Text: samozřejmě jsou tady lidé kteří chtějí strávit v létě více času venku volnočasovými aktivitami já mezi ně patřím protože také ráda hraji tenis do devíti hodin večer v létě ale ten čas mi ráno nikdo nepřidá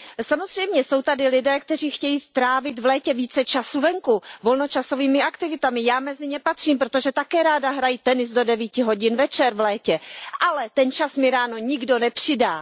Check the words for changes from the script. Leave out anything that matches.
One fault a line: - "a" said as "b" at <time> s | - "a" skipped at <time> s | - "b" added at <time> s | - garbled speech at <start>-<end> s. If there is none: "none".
none